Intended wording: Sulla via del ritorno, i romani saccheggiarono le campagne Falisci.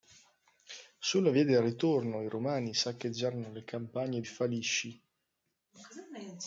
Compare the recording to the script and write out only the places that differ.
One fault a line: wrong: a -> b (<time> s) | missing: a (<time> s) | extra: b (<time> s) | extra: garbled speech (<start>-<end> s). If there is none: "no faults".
no faults